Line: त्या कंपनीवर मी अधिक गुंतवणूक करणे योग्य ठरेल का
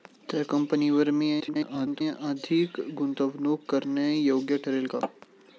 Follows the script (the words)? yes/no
no